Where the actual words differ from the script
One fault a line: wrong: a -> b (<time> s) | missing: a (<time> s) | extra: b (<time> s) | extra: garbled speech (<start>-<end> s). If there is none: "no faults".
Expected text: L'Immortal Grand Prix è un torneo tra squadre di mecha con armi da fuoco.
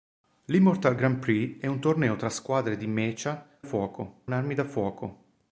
wrong: con -> fuoco (3.6 s)